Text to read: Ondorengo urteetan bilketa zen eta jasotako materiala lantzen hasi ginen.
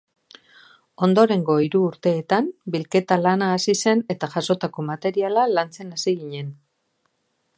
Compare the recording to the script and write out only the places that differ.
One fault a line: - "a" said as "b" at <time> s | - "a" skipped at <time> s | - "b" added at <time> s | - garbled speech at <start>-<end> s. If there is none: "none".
- "hiru" added at 1.6 s
- "lana hasi" added at 3.2 s